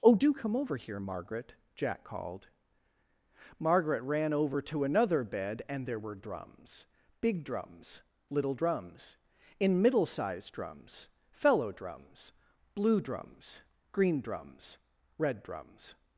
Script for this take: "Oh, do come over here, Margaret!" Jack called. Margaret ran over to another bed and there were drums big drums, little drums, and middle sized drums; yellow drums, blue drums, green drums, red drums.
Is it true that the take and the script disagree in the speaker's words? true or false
true